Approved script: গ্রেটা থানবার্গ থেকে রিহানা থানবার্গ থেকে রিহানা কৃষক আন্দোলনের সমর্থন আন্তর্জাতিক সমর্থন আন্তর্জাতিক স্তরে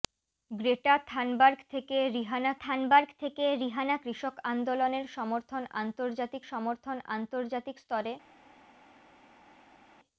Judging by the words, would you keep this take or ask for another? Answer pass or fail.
pass